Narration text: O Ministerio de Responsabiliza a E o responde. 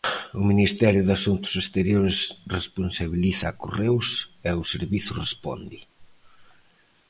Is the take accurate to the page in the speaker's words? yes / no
no